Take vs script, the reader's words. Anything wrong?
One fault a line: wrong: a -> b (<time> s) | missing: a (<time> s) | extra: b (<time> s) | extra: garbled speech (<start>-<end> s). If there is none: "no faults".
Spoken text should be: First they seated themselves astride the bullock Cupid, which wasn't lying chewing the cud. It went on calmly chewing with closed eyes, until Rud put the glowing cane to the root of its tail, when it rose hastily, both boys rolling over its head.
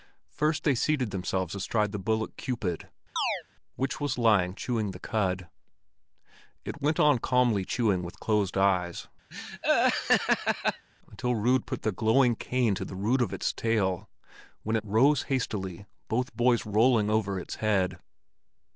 wrong: wasn't -> was (4.0 s)